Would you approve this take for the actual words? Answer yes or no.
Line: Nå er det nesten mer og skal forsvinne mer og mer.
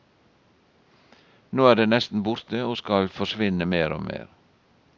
no